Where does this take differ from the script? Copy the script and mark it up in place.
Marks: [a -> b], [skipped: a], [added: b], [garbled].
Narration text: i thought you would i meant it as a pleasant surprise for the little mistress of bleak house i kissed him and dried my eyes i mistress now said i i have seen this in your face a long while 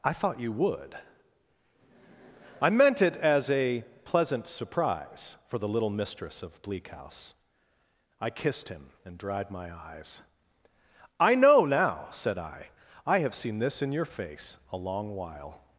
i thought you would i meant it as a pleasant surprise for the little mistress of bleak house i kissed him and dried my eyes i [mistress -> know] now said i i have seen this in your face a long while